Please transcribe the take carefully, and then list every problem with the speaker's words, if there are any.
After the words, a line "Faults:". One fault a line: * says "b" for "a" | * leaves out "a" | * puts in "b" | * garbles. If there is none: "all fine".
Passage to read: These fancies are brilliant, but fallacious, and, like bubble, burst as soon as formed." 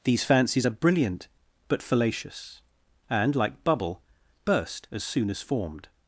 These fancies are brilliant, but fallacious, and, like bubble, burst as soon as formed."
Faults:
all fine